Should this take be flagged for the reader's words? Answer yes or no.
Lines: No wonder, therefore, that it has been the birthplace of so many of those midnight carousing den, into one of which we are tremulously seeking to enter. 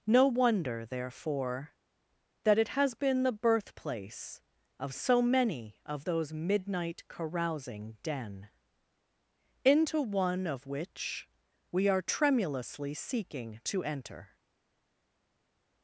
no